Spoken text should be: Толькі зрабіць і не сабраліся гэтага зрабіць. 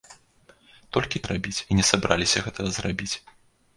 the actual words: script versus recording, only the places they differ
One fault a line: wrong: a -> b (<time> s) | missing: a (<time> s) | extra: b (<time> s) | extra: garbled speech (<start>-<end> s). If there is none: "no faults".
no faults